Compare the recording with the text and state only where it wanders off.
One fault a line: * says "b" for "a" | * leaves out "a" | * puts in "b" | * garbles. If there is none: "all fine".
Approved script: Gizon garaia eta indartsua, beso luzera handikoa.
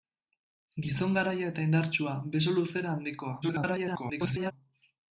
* garbles